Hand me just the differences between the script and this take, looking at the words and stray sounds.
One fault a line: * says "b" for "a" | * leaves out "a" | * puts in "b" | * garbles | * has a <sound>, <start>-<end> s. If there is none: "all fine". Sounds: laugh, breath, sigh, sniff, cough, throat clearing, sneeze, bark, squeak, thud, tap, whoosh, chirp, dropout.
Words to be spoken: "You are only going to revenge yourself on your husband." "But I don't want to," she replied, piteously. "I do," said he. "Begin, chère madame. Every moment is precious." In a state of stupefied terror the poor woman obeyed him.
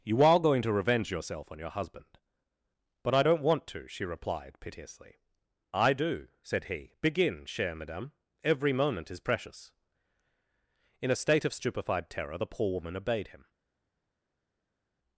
* leaves out "only"